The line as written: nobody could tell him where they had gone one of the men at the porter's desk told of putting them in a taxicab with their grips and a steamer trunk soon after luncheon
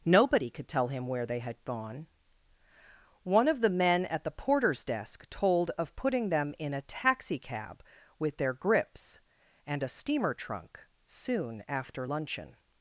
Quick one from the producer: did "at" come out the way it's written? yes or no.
yes